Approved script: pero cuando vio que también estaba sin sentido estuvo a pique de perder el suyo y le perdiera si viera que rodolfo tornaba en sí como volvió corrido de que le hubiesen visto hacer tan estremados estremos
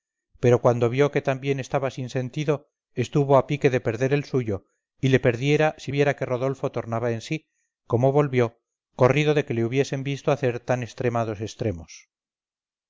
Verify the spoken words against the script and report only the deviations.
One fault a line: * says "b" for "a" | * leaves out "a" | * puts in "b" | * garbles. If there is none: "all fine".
all fine